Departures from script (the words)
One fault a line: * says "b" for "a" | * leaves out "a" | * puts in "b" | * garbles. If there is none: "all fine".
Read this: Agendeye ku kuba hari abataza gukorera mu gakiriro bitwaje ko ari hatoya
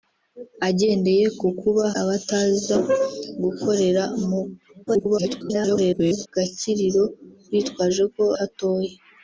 * leaves out "hari"
* garbles
* leaves out "ari"